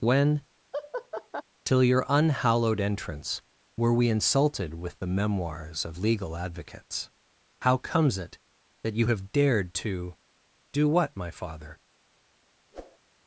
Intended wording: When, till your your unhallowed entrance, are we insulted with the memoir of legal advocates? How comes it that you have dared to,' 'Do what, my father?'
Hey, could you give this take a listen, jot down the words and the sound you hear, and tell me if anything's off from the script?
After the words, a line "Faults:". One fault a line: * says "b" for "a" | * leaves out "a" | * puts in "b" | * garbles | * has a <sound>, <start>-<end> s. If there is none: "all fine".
When, till your unhallowed entrance, were we insulted with the memoirs of legal advocates? How comes it that you have dared to,' 'Do what, my father?'
Faults:
* has a laugh, 0.7-1.4 s
* leaves out "your"
* says "were" for "are"
* says "memoirs" for "memoir"
* has a whoosh, 12.7-13.0 s